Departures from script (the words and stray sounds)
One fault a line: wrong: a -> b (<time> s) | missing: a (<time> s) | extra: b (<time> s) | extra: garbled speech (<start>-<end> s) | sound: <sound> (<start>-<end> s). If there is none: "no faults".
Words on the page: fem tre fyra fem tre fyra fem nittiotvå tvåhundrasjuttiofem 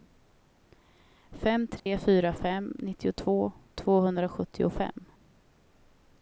sound: dropout (1.8-1.9 s)
missing: tre fyra fem (2.7 s)